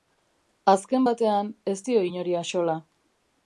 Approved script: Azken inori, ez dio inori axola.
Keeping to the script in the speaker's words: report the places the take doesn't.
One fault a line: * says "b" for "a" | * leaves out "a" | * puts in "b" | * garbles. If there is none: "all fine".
* says "batean" for "inori"